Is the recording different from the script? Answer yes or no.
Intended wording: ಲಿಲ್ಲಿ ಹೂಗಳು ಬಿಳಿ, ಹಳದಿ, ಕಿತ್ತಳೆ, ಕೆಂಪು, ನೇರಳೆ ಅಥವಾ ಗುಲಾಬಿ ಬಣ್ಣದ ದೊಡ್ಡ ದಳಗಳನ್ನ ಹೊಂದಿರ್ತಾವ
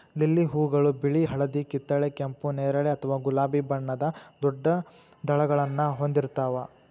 no